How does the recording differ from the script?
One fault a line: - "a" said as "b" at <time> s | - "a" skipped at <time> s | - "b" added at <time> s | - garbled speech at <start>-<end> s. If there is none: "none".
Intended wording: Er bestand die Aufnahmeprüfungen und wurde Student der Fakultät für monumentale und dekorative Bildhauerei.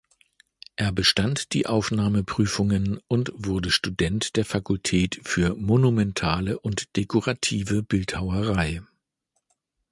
none